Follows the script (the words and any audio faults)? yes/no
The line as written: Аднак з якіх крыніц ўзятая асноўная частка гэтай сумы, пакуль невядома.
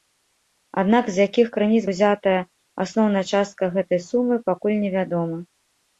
yes